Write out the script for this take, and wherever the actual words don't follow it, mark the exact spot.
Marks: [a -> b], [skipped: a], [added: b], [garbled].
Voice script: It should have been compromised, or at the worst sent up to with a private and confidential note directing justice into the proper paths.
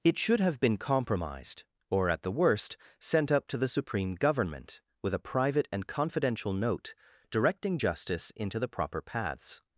It should have been compromised, or at the worst sent up to [added: the Supreme Government] with a private and confidential note directing justice into the proper paths.